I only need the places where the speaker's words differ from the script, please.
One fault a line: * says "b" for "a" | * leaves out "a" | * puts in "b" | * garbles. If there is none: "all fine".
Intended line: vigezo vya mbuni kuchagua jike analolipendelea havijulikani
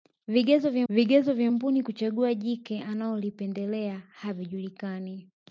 * puts in "vigezo vya"